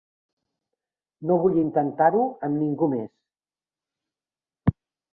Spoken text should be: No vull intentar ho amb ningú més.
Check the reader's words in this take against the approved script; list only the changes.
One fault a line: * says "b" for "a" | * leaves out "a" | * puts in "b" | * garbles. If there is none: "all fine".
all fine